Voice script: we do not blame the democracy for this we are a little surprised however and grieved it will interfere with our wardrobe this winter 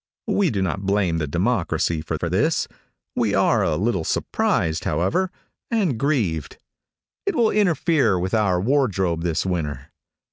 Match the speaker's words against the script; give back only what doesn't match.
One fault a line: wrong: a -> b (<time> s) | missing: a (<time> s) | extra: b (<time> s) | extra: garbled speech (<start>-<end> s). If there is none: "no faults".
extra: for (2.1 s)